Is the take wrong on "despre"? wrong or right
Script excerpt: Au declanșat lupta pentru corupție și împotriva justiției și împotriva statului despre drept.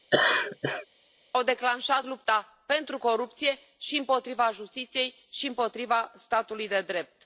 wrong